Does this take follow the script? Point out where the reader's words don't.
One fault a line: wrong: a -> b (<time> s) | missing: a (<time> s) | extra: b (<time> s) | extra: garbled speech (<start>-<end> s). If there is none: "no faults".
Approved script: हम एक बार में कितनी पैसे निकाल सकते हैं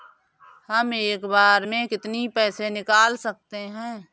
no faults